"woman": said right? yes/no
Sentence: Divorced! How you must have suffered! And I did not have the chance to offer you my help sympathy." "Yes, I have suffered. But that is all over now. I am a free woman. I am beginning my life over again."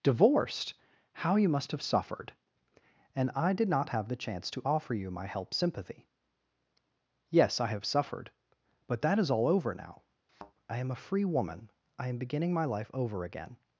yes